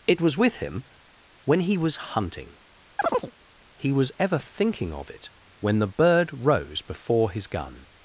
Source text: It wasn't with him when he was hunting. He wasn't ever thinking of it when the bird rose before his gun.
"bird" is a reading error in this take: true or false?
false